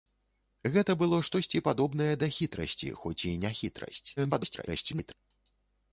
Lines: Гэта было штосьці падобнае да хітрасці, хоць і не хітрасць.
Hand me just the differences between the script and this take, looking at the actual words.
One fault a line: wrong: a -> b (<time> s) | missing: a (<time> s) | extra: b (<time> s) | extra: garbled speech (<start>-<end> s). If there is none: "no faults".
extra: garbled speech (4.2-5.1 s)